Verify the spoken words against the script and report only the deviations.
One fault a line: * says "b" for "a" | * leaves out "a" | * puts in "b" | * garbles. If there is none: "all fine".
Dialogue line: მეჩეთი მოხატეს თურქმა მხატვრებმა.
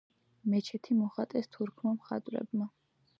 all fine